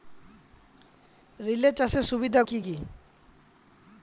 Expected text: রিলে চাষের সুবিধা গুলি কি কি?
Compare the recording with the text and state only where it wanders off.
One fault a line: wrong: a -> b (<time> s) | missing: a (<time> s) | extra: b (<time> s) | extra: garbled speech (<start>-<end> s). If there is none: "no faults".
missing: গুলি (2.4 s)